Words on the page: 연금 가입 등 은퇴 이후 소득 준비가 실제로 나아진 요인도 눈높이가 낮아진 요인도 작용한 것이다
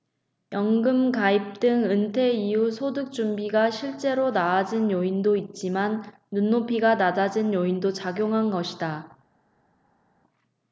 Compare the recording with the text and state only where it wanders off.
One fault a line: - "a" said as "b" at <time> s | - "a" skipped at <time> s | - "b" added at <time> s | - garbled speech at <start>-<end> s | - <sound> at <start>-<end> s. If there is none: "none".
- "있지만" added at 5.3 s